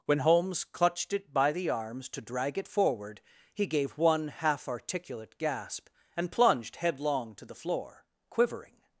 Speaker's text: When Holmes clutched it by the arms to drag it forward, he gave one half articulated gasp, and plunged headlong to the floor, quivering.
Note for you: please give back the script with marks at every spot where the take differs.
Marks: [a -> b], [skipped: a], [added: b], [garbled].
When Holmes clutched it by the arms to drag it forward, he gave one half [articulated -> articulate] gasp, and plunged headlong to the floor, quivering.